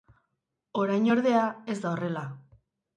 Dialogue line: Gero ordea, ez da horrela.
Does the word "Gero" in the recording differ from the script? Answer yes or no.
yes